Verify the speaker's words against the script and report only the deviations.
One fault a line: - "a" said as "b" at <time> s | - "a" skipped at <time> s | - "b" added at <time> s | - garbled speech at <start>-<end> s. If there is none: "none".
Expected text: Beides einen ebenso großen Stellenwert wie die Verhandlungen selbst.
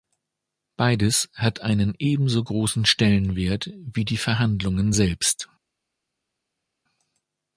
- "hat" added at 1.4 s